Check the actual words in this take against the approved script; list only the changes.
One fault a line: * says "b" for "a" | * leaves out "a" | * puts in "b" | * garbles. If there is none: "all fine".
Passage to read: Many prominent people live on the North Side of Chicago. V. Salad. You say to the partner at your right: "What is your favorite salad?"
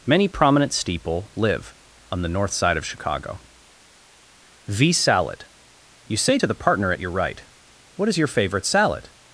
* says "steeple" for "people"